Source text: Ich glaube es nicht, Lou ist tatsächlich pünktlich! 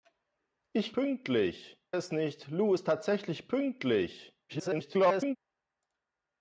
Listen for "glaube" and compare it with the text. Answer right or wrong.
wrong